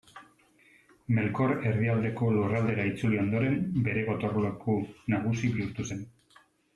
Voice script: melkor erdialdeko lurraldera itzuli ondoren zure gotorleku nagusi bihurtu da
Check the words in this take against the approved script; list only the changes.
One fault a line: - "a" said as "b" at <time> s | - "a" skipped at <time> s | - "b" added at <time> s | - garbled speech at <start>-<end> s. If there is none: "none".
- "zure" said as "bere" at 3.9 s
- "da" said as "zen" at 5.9 s